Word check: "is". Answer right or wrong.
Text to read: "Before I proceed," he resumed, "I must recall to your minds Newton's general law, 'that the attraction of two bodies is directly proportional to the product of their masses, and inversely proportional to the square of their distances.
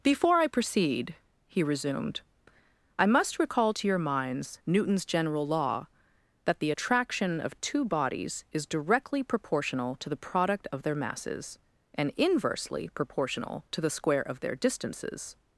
right